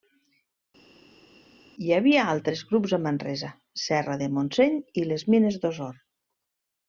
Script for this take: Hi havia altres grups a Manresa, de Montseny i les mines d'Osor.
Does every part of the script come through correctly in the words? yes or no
no